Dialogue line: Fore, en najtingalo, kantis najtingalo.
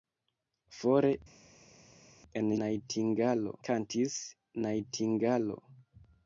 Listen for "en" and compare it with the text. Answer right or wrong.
right